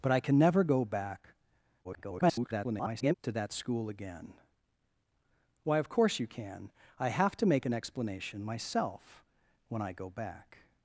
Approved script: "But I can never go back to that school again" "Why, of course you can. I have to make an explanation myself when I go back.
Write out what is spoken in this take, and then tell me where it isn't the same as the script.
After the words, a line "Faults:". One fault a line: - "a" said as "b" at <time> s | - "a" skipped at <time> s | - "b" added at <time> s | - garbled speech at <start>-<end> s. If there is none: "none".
"But I can never go back [garbled] to that school again" "Why, of course you can. I have to make an explanation myself when I go back.
Faults:
- garbled speech at 1.8-3.1 s